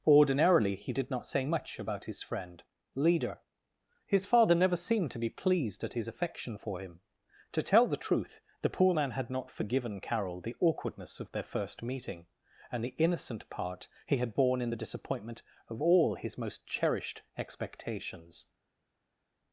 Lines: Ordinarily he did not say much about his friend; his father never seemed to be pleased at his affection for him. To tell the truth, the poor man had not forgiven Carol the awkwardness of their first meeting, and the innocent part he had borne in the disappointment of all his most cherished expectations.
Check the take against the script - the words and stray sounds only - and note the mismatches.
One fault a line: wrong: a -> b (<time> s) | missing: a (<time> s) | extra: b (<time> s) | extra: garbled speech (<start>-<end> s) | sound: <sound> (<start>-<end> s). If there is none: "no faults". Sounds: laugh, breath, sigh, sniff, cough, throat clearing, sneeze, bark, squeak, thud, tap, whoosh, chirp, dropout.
extra: leader (3.0 s)